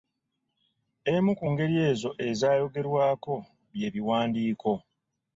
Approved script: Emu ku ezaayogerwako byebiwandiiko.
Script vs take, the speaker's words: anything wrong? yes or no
yes